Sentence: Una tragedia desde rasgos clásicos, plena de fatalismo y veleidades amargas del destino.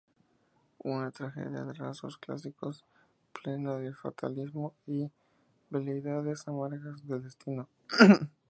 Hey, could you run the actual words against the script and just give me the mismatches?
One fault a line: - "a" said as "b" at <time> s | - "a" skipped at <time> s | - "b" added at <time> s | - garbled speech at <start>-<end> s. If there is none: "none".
- "desde" said as "de" at 1.6 s